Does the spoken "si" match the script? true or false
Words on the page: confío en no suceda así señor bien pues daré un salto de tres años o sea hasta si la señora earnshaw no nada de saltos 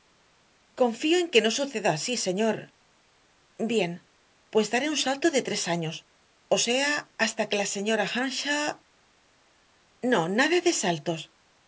false